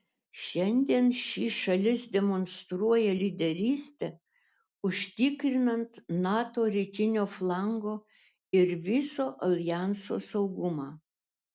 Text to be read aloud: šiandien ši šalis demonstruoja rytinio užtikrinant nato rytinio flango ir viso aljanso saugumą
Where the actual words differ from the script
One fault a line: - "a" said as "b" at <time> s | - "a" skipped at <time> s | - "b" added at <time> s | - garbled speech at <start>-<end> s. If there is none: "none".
- "rytinio" said as "lyderystę" at 3.2 s